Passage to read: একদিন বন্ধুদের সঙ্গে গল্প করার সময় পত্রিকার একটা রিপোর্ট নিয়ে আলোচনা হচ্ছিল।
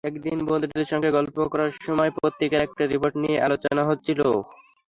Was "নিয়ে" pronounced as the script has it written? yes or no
yes